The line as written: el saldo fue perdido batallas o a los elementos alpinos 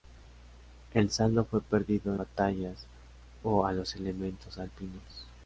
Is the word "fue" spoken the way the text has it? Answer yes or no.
yes